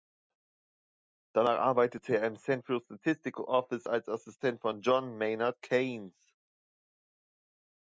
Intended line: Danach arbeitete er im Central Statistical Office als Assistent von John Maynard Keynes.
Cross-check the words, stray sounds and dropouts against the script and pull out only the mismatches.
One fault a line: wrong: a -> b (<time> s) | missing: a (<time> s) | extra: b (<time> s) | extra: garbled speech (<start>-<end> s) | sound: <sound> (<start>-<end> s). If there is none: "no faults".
no faults